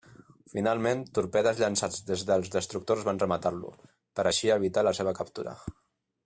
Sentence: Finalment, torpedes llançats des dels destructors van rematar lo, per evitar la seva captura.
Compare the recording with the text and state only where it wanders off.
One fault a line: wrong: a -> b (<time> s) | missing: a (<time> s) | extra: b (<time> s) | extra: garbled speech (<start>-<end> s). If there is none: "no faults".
extra: així (4.3 s)